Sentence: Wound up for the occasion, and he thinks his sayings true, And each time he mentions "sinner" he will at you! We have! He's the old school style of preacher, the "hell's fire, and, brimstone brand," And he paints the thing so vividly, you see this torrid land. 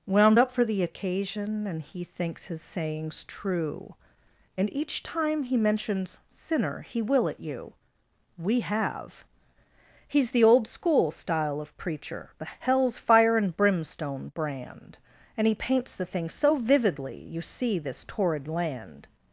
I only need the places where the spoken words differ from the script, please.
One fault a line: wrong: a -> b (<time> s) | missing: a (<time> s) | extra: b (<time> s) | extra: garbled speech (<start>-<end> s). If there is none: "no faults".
no faults